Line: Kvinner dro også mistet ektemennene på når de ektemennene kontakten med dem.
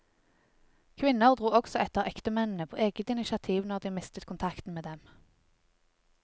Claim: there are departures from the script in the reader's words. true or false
true